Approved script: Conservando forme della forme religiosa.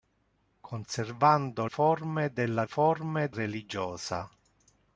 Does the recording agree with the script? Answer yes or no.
yes